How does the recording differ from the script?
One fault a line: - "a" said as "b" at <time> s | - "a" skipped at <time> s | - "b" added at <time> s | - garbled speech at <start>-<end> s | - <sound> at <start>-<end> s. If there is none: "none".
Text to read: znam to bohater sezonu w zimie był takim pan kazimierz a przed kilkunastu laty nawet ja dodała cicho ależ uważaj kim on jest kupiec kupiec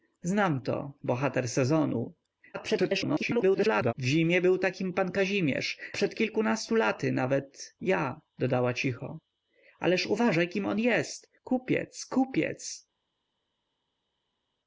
- garbled speech at 2.5-3.9 s
- "a" skipped at 5.8 s